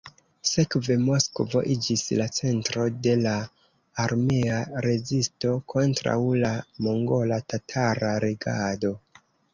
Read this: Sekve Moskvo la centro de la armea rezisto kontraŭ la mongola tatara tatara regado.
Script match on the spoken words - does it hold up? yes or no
no